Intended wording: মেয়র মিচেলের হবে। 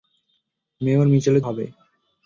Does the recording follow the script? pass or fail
pass